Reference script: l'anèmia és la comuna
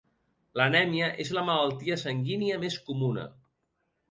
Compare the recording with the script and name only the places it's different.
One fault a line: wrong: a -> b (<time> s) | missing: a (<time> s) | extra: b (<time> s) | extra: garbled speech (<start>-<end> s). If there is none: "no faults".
extra: malaltia sanguínia més (1.5 s)